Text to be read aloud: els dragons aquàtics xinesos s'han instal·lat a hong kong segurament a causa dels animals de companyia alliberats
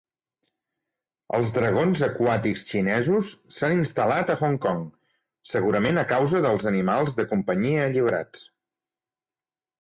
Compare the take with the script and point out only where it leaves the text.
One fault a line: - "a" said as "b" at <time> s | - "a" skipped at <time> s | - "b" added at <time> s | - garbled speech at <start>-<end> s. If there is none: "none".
none